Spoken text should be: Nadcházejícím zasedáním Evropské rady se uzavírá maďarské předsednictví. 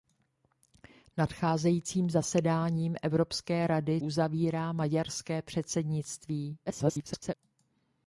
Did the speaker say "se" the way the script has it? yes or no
no